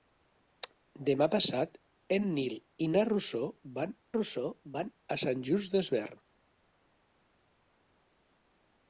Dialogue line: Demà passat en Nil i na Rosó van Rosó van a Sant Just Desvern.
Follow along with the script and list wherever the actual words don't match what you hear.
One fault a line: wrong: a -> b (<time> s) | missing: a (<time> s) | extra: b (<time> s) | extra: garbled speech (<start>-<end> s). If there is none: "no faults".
no faults